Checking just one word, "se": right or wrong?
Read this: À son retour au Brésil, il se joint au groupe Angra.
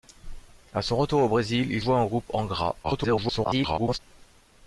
wrong